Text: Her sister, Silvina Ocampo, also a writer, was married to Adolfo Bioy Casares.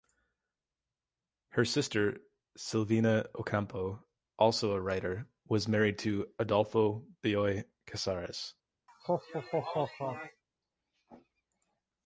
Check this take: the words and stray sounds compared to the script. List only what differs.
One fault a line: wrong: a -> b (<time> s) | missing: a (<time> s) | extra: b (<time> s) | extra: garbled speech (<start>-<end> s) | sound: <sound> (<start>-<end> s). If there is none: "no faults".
sound: laugh (8.9-10.4 s)